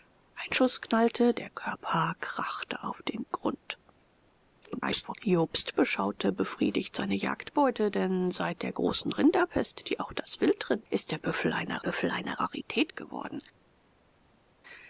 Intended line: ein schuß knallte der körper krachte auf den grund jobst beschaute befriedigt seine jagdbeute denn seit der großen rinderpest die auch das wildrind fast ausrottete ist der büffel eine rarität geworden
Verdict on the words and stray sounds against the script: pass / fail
fail